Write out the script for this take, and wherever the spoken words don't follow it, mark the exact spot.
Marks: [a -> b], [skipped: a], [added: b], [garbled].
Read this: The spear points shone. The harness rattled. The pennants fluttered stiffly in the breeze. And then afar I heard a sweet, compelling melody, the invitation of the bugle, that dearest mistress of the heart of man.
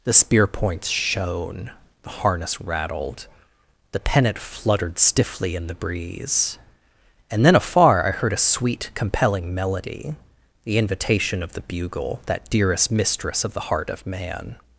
The spear points shone. The harness rattled. The [pennants -> pennant] fluttered stiffly in the breeze. And then afar I heard a sweet, compelling melody, the invitation of the bugle, that dearest mistress of the heart of man.